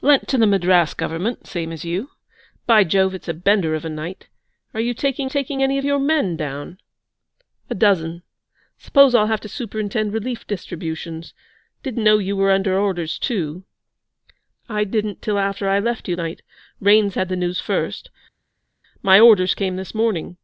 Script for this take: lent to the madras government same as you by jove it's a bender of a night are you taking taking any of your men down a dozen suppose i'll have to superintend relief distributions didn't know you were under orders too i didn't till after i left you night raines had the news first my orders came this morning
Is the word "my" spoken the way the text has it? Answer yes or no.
yes